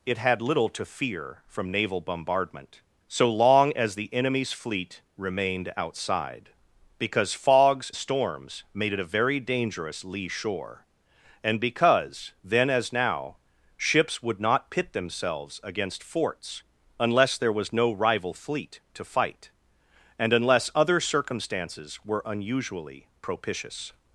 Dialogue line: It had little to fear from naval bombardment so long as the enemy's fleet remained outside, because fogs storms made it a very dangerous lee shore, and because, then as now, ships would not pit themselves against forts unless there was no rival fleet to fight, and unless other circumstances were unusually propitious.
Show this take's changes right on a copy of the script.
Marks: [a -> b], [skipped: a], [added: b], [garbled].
It had little to fear from naval bombardment so long as the enemy's fleet remained outside, because fogs storms made it a very dangerous lee shore, and because, then as now, ships would not pit themselves against forts unless there was no rival fleet to fight, and unless other circumstances were unusually propitious.